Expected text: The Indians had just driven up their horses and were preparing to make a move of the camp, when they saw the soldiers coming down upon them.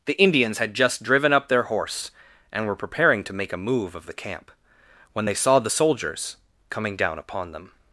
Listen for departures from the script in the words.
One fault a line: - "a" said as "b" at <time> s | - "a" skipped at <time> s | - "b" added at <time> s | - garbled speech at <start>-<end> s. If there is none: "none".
- "horses" said as "horse" at 1.6 s